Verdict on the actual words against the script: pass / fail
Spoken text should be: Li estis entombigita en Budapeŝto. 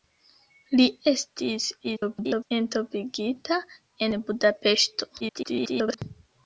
fail